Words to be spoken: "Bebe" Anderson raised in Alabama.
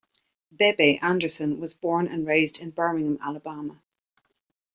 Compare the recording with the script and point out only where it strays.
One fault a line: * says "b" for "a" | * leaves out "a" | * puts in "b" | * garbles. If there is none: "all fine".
* puts in "was born and"
* puts in "Birmingham"